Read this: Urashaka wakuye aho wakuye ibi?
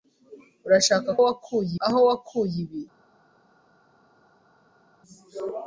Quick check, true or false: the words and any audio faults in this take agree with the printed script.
true